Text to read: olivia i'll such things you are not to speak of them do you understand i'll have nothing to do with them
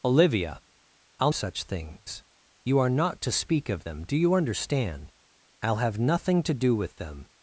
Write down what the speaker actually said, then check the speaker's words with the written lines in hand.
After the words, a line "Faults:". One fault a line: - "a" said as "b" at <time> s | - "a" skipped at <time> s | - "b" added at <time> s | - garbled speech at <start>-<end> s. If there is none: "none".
olivia i'll such things you are not to speak of them do you understand i'll have nothing to do with them
Faults:
none